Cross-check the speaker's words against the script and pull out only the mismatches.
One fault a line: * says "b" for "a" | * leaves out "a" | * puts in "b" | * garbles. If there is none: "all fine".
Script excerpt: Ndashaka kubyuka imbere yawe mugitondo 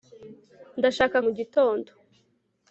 * leaves out "kubyuka imbere yawe"